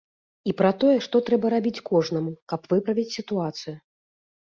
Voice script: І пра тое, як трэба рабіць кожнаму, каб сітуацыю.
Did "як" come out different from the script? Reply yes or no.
yes